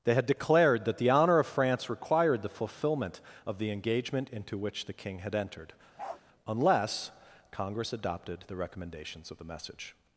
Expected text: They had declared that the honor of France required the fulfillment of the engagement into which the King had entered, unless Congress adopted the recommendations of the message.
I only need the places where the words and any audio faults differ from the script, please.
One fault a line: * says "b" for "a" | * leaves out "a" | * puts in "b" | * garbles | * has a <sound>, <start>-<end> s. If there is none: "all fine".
* has a bark, 6.0-6.2 s